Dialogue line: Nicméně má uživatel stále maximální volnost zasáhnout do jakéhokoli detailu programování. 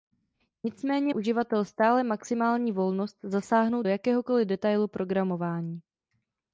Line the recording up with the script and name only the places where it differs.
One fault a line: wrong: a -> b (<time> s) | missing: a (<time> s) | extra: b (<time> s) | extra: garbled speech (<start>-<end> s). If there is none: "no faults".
missing: má (1.1 s)
missing: do (3.8 s)